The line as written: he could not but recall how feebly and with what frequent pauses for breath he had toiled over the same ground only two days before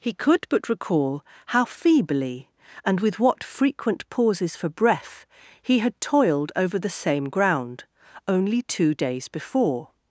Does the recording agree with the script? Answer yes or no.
no